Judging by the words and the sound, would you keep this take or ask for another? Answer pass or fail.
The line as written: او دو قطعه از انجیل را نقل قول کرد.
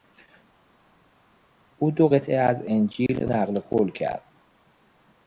fail